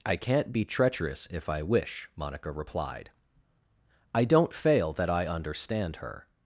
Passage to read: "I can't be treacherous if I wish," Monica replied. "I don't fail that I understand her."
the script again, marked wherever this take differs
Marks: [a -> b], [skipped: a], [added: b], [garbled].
"I can't be treacherous if I wish," Monica replied. "I don't fail that I understand her."